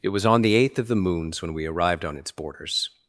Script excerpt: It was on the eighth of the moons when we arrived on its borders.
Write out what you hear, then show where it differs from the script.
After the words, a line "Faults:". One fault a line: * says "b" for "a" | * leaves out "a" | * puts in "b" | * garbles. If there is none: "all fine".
It was on the eighth of the moons when we arrived on its borders.
Faults:
all fine